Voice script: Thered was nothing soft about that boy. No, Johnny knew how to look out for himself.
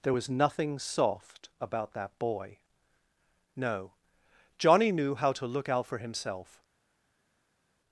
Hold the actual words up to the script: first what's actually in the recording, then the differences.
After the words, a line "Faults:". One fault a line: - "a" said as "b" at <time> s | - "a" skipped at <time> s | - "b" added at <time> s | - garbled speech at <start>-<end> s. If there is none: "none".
There was nothing soft about that boy. No, Johnny knew how to look out for himself.
Faults:
- "Thered" said as "There" at 0.0 s